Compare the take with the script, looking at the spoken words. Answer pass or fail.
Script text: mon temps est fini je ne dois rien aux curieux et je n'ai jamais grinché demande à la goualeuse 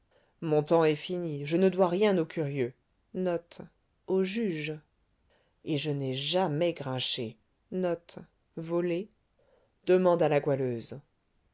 pass